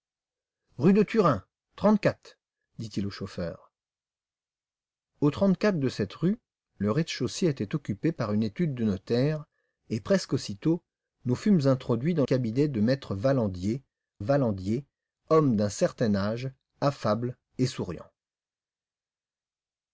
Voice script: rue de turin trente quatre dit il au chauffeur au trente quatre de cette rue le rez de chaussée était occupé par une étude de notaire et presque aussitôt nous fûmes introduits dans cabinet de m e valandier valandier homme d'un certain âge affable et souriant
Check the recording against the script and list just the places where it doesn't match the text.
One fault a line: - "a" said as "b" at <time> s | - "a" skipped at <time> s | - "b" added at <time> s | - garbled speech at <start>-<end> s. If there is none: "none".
none